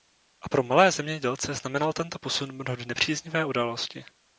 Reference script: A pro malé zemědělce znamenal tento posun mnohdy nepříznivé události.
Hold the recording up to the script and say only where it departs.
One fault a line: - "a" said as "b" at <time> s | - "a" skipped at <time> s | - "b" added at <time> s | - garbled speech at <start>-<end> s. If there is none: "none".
none